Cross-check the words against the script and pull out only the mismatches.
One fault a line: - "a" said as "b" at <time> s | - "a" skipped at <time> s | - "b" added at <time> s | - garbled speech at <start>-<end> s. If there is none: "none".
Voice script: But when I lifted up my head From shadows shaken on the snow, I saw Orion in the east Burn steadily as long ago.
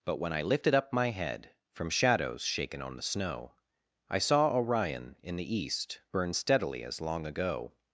none